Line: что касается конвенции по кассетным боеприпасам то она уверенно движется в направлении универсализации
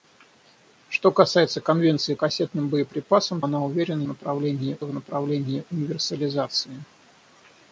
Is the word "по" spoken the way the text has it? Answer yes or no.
no